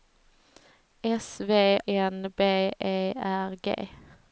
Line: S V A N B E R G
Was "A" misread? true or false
true